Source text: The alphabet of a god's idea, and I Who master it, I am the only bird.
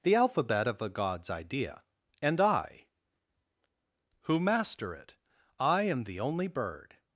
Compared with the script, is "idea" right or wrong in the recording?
right